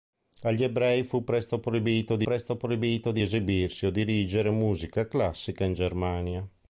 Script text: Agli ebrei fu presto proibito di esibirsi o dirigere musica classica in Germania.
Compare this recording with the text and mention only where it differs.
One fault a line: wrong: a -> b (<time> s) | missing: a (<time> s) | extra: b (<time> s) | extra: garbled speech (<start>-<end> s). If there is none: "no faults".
extra: presto proibito di (2.2 s)